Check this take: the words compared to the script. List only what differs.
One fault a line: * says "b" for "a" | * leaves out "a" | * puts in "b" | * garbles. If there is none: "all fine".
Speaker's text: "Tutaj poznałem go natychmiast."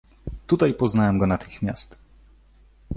all fine